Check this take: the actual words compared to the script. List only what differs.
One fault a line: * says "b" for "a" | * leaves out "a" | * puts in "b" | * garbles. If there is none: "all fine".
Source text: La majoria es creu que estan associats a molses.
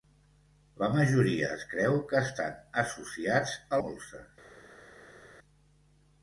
all fine